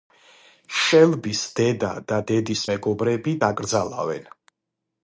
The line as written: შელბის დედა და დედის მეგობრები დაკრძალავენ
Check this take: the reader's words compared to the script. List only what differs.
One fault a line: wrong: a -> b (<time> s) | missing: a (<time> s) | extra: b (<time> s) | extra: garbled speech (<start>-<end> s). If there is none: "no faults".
no faults